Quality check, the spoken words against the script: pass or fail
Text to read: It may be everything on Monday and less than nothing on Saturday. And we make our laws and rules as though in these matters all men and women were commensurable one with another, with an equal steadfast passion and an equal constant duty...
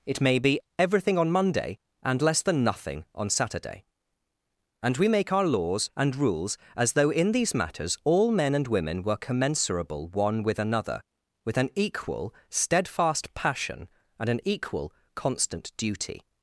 pass